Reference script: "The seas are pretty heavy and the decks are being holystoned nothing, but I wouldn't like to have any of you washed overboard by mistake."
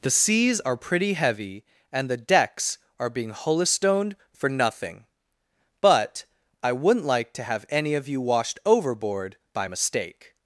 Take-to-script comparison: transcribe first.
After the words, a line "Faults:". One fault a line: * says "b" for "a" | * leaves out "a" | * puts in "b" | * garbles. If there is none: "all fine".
"The seas are pretty heavy and the decks are being holystoned for nothing, but I wouldn't like to have any of you washed overboard by mistake."
Faults:
* puts in "for"